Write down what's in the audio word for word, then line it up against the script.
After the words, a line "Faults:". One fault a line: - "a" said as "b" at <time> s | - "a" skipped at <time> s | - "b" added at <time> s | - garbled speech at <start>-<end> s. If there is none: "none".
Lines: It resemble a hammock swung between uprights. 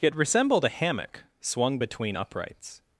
It resembled a hammock swung between uprights.
Faults:
- "resemble" said as "resembled" at 0.1 s